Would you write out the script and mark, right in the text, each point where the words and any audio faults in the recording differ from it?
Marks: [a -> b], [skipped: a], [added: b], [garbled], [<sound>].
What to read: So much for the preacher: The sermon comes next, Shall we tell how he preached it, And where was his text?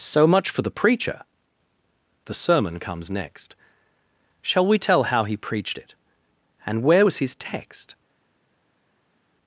So much for the preacher: The sermon comes next, Shall we tell how he preached it, And where was his text?